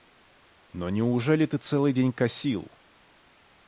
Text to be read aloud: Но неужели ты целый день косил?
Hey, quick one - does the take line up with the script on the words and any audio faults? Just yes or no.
yes